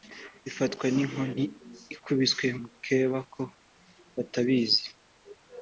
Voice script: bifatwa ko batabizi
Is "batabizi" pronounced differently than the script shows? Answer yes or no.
no